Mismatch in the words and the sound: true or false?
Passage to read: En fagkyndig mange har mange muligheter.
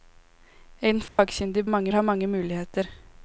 true